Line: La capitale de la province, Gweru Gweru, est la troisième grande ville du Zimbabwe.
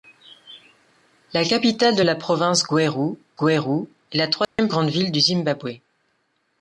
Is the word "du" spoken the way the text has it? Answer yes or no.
yes